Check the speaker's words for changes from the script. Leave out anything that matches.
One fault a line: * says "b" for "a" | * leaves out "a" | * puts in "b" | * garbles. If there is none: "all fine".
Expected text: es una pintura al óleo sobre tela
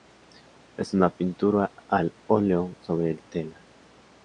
all fine